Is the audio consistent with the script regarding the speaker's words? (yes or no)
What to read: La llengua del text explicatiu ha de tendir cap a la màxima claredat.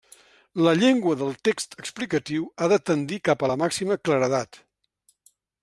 yes